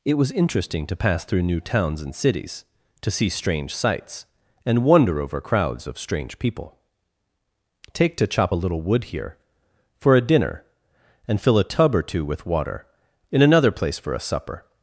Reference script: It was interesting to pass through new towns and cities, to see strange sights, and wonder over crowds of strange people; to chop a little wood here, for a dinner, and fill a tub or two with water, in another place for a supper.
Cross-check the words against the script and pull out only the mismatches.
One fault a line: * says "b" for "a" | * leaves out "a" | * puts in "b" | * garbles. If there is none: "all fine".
* puts in "take"